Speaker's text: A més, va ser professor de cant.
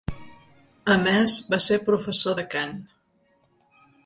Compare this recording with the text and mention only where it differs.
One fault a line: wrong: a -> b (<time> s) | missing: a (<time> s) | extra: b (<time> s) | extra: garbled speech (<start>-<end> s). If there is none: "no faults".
no faults